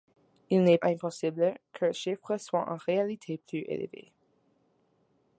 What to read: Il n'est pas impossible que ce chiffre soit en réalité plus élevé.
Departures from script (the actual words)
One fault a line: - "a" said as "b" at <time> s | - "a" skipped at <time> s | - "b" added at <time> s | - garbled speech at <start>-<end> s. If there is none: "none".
- "pas" skipped at 0.8 s
- "ce" skipped at 1.9 s